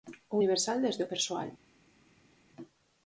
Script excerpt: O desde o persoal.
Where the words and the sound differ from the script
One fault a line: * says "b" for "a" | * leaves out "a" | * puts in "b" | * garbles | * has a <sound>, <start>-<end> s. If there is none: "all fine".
* puts in "universal"